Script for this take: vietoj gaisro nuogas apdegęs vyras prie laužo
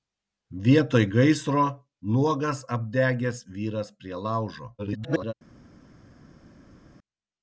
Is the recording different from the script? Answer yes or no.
yes